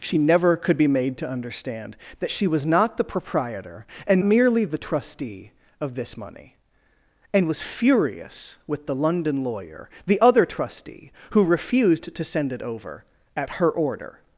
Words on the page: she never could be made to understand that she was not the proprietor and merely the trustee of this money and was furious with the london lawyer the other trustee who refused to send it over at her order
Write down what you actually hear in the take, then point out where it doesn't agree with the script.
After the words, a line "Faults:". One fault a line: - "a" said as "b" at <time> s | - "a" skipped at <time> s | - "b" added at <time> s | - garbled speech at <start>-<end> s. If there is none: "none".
she never could be made to understand that she was not the proprietor and merely the trustee of this money and was furious with the london lawyer the other trustee who refused to send it over at her order
Faults:
none